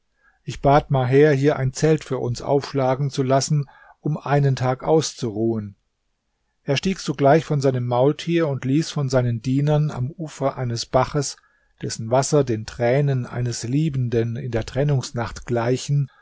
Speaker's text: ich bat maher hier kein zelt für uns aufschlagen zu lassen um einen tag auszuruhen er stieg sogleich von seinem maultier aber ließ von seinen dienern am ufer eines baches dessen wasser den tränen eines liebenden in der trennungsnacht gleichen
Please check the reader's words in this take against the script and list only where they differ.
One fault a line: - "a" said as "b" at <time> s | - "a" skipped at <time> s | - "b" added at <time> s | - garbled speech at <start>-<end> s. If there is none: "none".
- "kein" said as "ein" at 1.6 s
- "aber" said as "und" at 8.5 s